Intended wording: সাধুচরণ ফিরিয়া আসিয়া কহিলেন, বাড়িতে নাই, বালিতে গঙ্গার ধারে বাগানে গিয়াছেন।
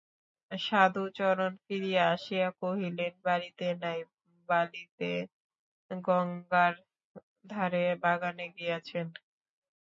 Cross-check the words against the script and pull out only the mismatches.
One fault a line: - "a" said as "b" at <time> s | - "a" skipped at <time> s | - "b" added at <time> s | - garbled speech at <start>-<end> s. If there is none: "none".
none